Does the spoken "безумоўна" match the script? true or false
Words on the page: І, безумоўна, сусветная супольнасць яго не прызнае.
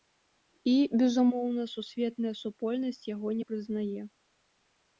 true